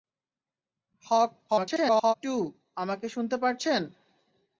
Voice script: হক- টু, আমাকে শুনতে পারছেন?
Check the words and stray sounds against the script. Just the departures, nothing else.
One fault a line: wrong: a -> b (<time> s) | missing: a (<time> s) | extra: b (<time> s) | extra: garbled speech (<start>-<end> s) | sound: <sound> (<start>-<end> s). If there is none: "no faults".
extra: garbled speech (1.5-2.1 s)